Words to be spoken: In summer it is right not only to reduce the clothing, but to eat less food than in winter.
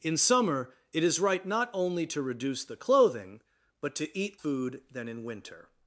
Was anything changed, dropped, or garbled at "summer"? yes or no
no